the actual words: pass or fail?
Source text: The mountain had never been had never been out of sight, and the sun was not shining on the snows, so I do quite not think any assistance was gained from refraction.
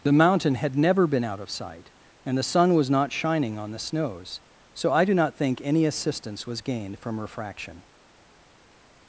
fail